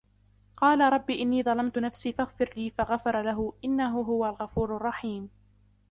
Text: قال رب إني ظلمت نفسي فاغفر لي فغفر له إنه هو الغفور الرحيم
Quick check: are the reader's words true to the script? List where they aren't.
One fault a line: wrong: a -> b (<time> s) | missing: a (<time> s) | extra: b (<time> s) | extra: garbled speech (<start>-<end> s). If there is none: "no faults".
no faults